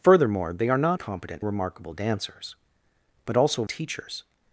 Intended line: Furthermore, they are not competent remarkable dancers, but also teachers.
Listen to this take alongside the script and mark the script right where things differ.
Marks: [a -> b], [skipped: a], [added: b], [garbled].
Furthermore, they are not competent remarkable dancers, but also teachers.